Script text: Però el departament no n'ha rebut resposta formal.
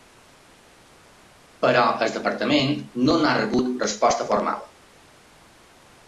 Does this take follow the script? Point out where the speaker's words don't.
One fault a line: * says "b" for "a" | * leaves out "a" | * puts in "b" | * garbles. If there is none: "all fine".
all fine